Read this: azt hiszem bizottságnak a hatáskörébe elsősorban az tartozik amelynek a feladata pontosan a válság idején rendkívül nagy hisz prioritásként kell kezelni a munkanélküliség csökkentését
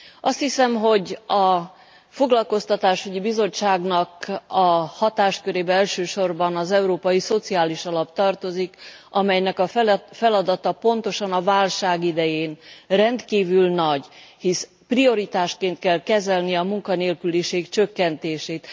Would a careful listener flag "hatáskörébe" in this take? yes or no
no